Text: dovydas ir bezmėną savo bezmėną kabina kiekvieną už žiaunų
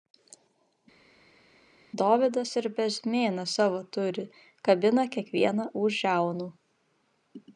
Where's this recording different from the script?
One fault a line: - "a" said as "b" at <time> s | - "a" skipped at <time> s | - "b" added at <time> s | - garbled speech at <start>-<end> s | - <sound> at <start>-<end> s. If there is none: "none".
- "bezmėną" said as "turi" at 4.0 s